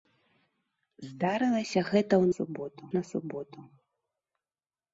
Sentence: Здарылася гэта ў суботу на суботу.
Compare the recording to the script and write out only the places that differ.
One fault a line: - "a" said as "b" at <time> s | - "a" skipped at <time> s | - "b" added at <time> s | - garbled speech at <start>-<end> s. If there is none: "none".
none